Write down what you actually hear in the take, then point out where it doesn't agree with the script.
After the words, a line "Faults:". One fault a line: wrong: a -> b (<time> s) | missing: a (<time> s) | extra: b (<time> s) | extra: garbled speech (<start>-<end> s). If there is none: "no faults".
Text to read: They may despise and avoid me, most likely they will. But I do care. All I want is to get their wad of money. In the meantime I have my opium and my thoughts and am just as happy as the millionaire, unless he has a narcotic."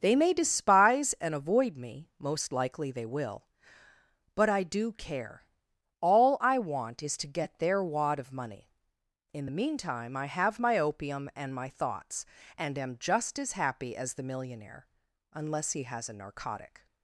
They may despise and avoid me, most likely they will. But I do care. All I want is to get their wad of money. In the meantime I have my opium and my thoughts and am just as happy as the millionaire, unless he has a narcotic."
Faults:
no faults